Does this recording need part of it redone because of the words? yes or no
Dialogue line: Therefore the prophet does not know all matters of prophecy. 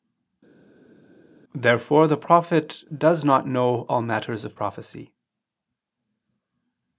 no